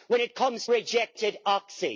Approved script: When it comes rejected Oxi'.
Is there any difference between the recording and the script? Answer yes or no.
no